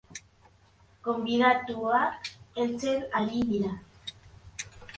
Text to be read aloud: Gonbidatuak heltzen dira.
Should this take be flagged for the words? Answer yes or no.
yes